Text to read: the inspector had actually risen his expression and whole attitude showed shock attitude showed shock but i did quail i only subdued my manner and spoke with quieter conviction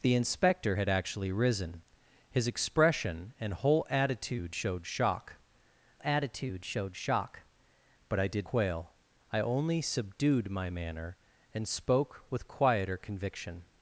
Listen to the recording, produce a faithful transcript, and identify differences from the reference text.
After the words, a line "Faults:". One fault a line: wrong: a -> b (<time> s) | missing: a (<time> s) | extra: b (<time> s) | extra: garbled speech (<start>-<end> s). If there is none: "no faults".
the inspector had actually risen his expression and whole attitude showed shock attitude showed shock but i did quail i only subdued my manner and spoke with quieter conviction
Faults:
no faults